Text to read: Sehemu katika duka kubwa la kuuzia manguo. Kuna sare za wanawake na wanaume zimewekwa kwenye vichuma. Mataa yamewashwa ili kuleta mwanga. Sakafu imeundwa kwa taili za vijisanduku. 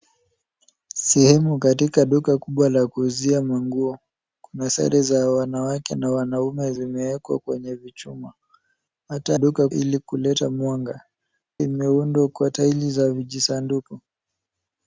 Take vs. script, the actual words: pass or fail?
fail